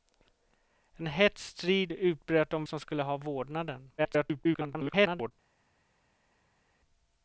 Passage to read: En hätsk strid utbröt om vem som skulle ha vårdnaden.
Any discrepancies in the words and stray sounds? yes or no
yes